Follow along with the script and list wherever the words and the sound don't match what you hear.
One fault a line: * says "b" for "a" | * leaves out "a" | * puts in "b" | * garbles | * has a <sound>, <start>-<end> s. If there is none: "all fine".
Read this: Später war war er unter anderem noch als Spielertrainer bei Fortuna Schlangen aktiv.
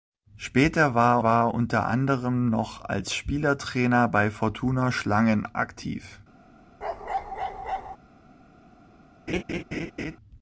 * has a bark, 6.8-8.0 s
* has a laugh, 9.3-10.2 s